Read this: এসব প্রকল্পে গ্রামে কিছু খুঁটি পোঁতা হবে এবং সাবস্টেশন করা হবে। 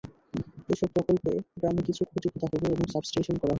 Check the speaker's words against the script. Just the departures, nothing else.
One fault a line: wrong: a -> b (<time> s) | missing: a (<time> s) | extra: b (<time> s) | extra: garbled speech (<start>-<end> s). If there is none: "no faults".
no faults